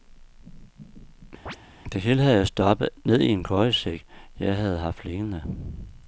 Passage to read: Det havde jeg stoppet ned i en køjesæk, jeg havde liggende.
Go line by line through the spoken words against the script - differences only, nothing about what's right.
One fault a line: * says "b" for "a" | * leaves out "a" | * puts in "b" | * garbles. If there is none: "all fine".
* puts in "hele"
* puts in "haft"